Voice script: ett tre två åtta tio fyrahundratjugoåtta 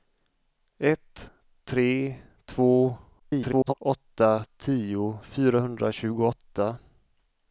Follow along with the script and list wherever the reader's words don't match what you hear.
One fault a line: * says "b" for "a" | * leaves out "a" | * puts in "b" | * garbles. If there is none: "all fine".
* garbles